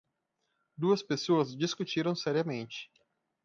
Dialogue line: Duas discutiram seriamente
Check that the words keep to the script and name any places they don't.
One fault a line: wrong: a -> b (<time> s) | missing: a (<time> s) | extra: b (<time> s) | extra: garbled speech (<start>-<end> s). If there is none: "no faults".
extra: pessoas (1.0 s)